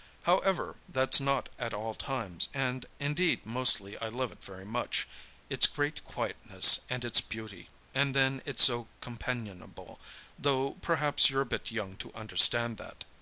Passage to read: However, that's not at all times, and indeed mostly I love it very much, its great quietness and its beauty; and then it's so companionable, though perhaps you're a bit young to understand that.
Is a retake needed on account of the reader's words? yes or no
no